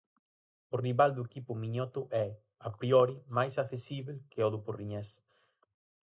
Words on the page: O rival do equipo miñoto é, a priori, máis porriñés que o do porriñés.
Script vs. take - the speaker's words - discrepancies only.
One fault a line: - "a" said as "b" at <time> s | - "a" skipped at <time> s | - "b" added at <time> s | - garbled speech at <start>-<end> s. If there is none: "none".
- "porriñés" said as "accesíbel" at 3.6 s